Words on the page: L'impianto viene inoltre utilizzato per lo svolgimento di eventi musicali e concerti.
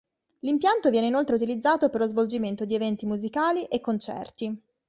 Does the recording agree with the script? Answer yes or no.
yes